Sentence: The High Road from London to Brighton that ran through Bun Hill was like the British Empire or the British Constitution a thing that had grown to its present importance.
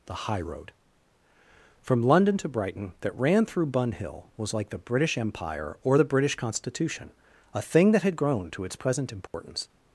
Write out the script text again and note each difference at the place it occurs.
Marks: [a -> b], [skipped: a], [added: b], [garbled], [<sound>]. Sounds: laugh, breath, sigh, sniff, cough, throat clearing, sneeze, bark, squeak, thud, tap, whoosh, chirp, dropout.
The High Road from London to Brighton that ran through Bun Hill was like the British Empire or the British Constitution a thing that had grown to its present importance. [dropout]